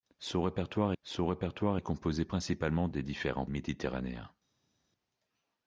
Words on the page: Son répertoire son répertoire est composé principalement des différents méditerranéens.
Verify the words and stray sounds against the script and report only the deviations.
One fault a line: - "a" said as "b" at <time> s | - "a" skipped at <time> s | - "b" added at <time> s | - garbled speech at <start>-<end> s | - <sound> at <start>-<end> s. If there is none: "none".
none